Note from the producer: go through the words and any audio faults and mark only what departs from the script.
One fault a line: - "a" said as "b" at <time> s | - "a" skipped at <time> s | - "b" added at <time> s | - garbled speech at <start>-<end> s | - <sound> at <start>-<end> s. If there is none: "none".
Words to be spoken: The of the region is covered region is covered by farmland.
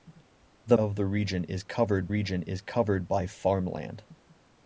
none